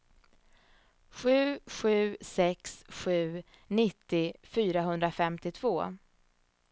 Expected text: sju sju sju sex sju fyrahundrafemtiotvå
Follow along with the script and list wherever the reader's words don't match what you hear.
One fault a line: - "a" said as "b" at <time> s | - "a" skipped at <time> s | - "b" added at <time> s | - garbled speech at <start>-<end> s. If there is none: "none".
- "sju" skipped at 2.2 s
- "nittio" added at 3.7 s